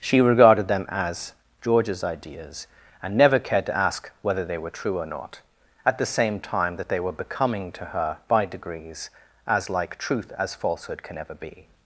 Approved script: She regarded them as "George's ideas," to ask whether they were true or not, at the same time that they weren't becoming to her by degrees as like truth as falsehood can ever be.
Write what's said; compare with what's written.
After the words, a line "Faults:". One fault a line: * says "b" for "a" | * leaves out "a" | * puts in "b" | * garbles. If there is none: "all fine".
She regarded them as "George's ideas," and never cared to ask whether they were true or not, at the same time that they were becoming to her by degrees as like truth as falsehood can ever be.
Faults:
* puts in "and never cared"
* says "were" for "weren't"